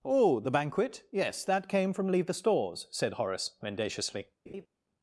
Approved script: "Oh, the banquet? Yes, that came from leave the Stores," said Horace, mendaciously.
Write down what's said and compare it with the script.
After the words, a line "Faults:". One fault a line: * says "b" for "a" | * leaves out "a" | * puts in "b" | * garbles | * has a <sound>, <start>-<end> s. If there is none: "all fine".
"Oh, the banquet? Yes, that came from leave the Stores," said Horace, mendaciously.
Faults:
* has a laugh, 4.5-4.7 s